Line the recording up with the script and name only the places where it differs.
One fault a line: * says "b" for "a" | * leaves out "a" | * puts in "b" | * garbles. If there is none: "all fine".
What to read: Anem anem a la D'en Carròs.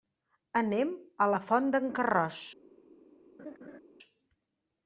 * leaves out "anem"
* puts in "Font"